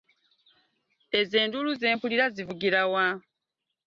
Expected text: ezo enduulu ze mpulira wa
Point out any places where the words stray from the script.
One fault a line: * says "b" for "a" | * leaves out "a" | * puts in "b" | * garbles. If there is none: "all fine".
* puts in "zivugira"